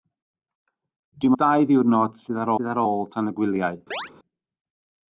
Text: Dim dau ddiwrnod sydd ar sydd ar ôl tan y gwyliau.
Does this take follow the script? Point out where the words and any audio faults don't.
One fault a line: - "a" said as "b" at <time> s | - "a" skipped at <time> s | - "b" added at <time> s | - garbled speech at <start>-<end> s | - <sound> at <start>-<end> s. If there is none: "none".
- chirp at 3.9-4.1 s